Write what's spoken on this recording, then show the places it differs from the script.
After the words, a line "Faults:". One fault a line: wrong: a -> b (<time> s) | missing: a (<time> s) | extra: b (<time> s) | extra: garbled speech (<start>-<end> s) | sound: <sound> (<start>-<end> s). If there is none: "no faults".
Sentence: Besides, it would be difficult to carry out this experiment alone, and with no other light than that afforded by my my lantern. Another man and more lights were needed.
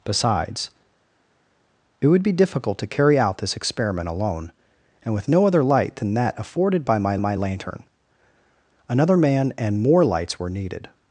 Besides, it would be difficult to carry out this experiment alone, and with no other light than that afforded by my my lantern. Another man and more lights were needed.
Faults:
no faults